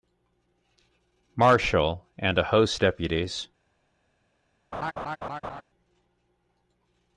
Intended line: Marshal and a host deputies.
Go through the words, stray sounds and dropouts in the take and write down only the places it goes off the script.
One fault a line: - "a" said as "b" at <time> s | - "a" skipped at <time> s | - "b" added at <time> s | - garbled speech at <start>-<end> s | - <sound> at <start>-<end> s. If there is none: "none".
- laugh at 4.7-5.6 s